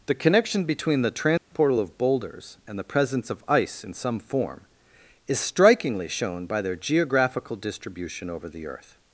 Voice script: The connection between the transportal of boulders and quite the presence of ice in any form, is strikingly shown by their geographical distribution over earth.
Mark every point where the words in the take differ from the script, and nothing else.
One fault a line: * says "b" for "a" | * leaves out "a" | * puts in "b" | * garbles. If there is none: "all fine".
* leaves out "quite"
* says "some" for "any"
* puts in "the"